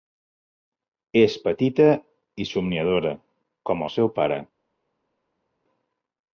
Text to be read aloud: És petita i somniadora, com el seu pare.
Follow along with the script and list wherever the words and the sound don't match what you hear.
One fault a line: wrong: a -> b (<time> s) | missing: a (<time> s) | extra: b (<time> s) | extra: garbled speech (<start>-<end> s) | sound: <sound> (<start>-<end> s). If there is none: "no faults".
no faults